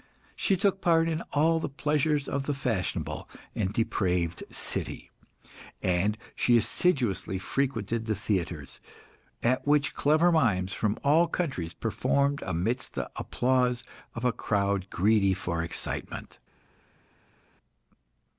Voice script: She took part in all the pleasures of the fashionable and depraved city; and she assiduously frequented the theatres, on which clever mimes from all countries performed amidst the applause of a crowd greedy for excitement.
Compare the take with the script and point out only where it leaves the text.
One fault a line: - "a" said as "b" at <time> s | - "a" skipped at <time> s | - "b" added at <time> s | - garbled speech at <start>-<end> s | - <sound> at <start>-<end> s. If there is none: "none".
- "on" said as "at" at 9.4 s